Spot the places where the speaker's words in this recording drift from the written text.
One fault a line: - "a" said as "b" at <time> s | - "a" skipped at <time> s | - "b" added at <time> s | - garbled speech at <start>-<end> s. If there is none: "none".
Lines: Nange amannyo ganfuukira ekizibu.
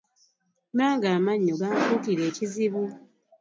none